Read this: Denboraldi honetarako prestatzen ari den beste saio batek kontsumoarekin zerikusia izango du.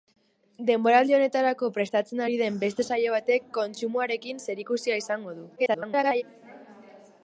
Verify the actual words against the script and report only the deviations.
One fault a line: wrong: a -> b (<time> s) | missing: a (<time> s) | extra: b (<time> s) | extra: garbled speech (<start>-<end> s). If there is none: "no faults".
extra: garbled speech (5.6-6.2 s)